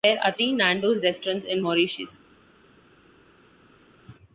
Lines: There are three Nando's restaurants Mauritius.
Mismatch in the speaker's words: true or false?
true